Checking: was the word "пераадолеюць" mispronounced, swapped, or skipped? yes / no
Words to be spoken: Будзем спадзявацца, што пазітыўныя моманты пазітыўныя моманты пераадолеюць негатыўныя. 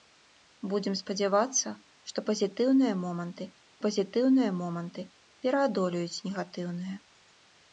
no